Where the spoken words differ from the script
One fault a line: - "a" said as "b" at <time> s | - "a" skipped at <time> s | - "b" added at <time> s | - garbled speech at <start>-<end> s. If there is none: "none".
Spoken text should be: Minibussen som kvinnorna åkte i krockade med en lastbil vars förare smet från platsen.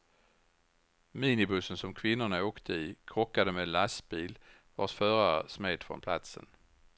none